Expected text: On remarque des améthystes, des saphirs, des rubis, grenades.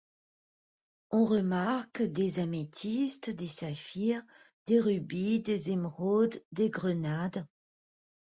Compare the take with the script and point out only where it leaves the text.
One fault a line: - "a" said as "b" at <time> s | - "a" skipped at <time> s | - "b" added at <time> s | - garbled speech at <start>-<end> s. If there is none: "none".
- "des émeraudes des" added at 5.4 s